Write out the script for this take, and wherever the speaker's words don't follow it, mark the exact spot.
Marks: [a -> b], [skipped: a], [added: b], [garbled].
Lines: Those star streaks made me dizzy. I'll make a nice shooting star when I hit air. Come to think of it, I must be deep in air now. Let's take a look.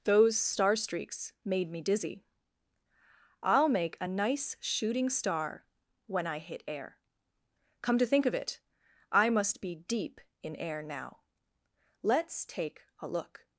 Those star streaks made me dizzy. I'll make a nice shooting star when I hit air. Come to think of it, I must be deep in air now. Let's take a look.